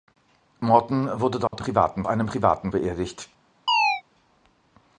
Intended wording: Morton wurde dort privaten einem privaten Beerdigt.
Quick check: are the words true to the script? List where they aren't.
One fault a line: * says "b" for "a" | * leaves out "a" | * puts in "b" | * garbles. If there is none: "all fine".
all fine